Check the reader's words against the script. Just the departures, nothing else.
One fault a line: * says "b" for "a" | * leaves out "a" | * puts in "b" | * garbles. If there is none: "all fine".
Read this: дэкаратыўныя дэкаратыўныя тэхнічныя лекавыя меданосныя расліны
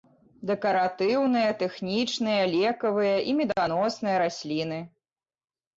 * leaves out "дэкаратыўныя"
* puts in "і"